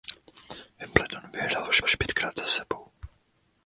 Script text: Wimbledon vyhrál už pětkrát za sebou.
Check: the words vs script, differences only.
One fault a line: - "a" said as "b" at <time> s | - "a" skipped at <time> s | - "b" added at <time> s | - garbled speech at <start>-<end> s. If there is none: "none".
- "už" added at 1.8 s